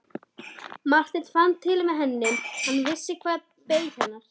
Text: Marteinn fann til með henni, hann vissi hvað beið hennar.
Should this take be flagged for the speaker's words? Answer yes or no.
no